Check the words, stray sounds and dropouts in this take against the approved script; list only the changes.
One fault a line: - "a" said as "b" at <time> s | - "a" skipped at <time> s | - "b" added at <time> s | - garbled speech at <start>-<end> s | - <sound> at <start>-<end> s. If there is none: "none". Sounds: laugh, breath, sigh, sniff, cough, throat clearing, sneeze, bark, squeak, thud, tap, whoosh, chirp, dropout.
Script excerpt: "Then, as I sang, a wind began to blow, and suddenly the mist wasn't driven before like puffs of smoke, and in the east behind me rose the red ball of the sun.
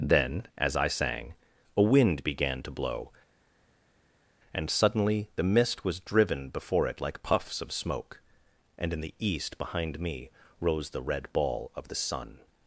- "wasn't" said as "was" at 5.8 s
- "it" added at 6.9 s